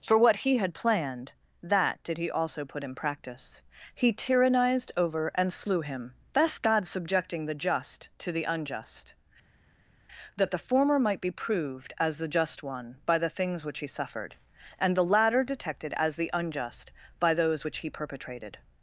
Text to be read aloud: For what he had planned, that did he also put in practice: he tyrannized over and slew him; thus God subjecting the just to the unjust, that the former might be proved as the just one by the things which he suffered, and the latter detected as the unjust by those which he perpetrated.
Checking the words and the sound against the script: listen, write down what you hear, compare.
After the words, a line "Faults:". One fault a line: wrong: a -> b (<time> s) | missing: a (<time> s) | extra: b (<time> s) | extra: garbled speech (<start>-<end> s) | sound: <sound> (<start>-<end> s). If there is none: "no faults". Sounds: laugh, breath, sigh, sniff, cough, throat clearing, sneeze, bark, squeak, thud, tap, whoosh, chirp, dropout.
For what he had planned, that did he also put in practice: he tyrannized over and slew him; thus God subjecting the just to the unjust, that the former might be proved as the just one by the things which he suffered, and the latter detected as the unjust by those which he perpetrated.
Faults:
no faults